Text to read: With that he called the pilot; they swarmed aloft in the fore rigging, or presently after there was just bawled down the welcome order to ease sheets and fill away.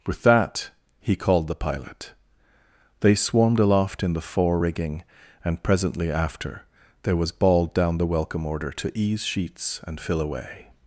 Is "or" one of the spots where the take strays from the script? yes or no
yes